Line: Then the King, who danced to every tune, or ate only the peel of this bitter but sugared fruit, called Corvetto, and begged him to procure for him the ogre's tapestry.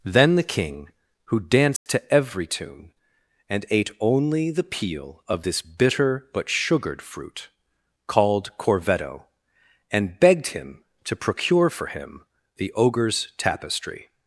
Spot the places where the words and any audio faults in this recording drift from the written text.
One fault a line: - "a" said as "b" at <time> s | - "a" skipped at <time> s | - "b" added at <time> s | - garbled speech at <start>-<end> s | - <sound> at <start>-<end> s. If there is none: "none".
- dropout at 1.8-1.9 s
- "or" said as "and" at 3.5 s